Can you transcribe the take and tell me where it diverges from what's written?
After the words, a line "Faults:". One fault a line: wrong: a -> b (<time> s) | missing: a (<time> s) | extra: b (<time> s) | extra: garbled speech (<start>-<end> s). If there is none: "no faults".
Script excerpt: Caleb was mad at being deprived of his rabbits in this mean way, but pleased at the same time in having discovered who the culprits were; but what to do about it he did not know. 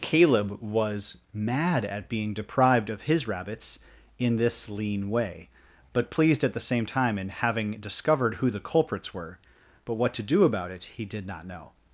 Caleb was mad at being deprived of his rabbits in this lean way, but pleased at the same time in having discovered who the culprits were; but what to do about it he did not know.
Faults:
wrong: mean -> lean (4.7 s)